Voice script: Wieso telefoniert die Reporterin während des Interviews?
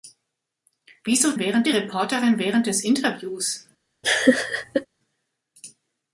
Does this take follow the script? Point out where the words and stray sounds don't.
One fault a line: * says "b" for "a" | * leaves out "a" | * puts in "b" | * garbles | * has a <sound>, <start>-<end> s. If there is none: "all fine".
* says "während" for "telefoniert"
* has a laugh, 4.0-4.9 s